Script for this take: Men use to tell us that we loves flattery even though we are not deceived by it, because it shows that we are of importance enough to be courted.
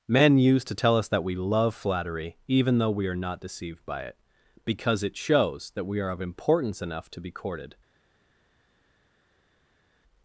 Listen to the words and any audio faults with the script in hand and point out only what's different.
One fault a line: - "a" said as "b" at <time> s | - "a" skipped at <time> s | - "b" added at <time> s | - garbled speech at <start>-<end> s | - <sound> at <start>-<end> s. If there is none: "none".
- "loves" said as "love" at 1.4 s